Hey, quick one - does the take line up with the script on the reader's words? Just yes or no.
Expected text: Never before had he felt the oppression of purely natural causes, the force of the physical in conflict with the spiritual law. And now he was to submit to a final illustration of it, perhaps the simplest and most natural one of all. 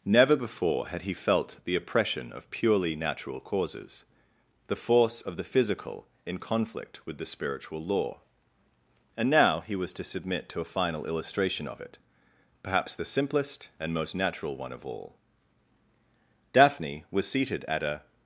no